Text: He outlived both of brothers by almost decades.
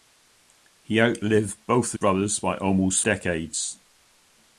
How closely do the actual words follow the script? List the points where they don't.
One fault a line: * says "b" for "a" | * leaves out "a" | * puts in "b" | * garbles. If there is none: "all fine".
all fine